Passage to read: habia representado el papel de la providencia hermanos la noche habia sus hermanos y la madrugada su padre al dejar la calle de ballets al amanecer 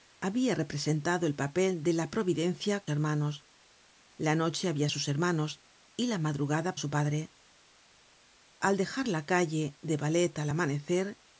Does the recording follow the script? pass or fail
pass